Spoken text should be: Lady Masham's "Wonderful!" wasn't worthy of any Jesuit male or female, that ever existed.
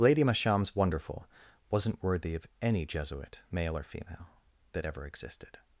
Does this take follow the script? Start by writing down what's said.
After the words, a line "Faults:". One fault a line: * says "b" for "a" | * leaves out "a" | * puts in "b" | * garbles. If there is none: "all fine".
Lady Masham's "Wonderful!" wasn't worthy of any Jesuit male or female, that ever existed.
Faults:
all fine